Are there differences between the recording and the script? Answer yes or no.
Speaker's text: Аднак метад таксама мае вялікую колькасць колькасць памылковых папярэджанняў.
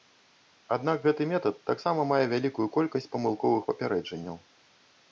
yes